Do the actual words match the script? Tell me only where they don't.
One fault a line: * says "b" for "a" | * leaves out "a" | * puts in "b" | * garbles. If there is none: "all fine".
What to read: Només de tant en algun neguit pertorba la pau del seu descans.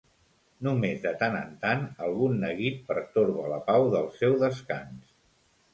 * puts in "tant"